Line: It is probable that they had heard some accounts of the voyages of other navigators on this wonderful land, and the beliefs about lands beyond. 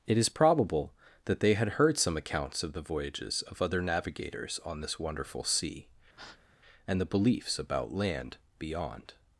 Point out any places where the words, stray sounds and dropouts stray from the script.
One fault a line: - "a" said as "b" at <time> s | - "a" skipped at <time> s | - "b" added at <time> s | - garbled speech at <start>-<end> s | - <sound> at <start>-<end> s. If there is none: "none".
- "land" said as "sea" at 5.4 s
- breath at 6.1-6.5 s
- "lands" said as "land" at 7.9 s